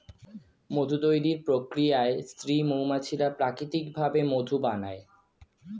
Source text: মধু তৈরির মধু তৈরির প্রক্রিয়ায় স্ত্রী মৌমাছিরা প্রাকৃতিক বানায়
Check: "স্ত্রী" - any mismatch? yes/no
no